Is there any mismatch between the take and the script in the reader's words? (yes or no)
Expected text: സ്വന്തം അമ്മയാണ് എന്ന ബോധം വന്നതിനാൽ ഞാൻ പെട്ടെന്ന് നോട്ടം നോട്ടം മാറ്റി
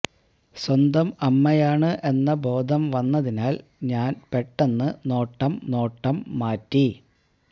no